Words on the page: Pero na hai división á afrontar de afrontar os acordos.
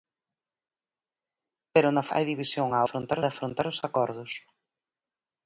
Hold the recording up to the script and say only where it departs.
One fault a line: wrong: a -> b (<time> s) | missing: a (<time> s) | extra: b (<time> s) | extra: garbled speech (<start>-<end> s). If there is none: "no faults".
no faults